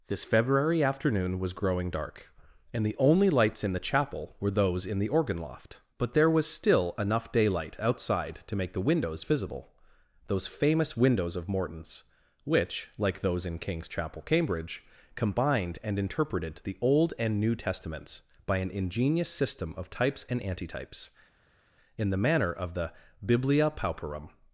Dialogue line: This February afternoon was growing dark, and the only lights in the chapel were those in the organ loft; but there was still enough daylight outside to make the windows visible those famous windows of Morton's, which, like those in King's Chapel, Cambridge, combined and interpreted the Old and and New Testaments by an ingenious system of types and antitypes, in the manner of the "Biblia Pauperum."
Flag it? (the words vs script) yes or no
yes